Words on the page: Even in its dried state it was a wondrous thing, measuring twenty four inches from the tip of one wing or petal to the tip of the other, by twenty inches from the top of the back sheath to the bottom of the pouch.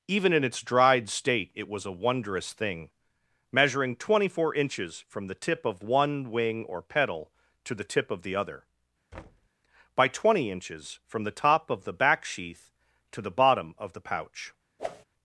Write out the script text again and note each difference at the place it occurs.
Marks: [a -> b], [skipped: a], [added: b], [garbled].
Even in its dried state it was a wondrous thing, measuring twenty four inches from the tip of one wing or petal to the tip of the other, by twenty inches from the top of the back sheath to the bottom of the pouch.